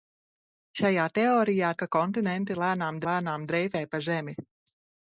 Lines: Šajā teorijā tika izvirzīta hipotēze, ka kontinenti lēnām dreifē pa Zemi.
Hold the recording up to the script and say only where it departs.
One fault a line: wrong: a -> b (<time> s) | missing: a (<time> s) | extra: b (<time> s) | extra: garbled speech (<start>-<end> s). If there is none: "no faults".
missing: tika izvirzīta hipotēze (1.7 s)
extra: lēnām (3.1 s)